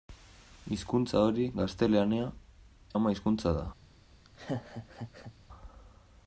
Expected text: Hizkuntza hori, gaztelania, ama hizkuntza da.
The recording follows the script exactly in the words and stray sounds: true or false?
false